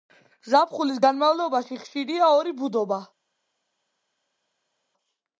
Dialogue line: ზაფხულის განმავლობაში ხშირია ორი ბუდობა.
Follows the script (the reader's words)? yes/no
yes